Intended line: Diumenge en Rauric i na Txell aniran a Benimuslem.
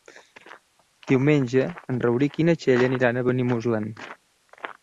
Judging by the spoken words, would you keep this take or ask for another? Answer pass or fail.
pass